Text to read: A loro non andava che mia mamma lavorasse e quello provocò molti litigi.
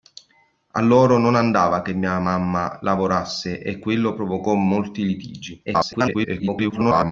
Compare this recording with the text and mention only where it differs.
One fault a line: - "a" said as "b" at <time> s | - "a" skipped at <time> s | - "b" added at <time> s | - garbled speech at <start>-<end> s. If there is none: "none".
- garbled speech at 5.7-7.1 s